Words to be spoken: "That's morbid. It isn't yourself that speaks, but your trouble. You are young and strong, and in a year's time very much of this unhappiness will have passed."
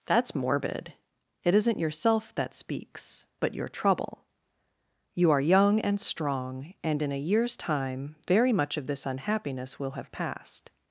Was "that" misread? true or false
false